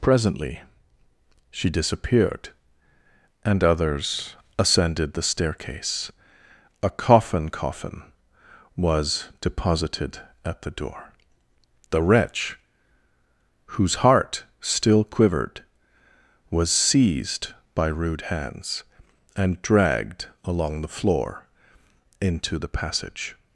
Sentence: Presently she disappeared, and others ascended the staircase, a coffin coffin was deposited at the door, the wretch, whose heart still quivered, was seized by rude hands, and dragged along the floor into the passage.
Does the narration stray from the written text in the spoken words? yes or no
no